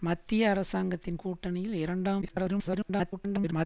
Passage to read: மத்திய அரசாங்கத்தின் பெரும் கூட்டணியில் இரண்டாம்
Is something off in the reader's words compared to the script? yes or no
yes